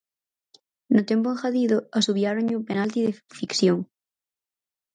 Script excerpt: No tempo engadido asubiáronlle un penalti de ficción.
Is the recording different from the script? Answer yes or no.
no